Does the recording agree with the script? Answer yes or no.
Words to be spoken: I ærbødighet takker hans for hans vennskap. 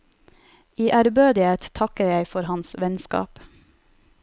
no